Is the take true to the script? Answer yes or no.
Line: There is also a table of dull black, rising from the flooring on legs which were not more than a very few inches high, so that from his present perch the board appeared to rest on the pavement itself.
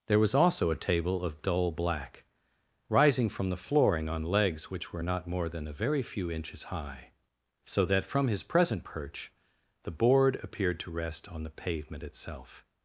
no